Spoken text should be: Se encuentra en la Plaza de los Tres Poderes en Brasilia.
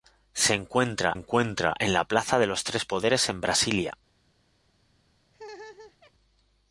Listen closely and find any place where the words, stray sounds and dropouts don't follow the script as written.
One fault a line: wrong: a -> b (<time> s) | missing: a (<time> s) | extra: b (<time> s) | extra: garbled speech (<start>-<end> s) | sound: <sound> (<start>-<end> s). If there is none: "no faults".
extra: encuentra (1.1 s)
sound: laugh (5.3-6.1 s)